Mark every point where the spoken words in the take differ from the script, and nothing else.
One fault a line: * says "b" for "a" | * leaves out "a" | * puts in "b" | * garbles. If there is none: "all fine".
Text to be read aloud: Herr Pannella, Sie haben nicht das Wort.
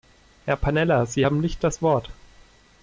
all fine